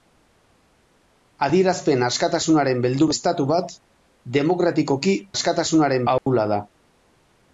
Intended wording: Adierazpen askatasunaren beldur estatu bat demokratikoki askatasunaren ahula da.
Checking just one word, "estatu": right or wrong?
right